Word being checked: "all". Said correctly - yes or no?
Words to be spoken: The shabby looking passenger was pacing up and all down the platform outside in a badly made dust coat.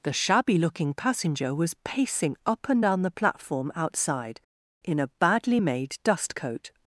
no